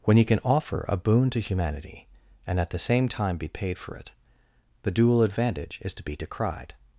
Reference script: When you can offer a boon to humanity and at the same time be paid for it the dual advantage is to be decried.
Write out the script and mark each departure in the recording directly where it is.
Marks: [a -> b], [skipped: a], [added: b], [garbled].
When you can offer a boon to humanity and at the same time be paid for it the dual advantage is to be decried.